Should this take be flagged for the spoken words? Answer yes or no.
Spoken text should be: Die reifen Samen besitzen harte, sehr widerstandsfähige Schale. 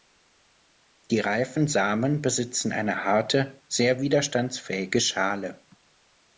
yes